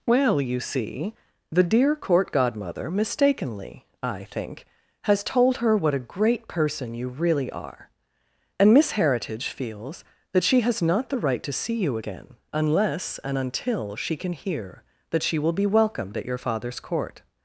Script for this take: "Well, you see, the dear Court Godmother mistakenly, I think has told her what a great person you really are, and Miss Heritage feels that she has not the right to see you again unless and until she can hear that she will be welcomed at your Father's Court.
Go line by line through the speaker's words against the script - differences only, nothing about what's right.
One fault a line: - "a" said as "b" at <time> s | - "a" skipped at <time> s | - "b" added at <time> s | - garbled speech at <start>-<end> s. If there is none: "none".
none